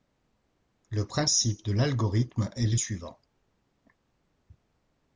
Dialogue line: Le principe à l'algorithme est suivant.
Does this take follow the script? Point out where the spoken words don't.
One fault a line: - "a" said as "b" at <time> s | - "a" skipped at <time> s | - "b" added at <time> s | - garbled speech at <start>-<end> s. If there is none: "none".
- "à" said as "de" at 1.6 s
- "le" added at 2.6 s